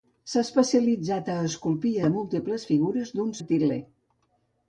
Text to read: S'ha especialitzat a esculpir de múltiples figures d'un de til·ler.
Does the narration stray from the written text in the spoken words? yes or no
no